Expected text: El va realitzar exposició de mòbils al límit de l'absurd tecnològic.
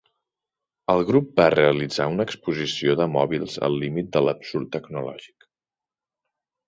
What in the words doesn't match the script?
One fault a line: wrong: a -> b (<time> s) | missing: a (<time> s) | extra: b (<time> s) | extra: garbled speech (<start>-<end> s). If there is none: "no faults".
extra: grup (1.1 s)
extra: una (2.1 s)